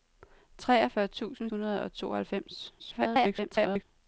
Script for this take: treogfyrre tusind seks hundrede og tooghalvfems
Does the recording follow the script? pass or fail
fail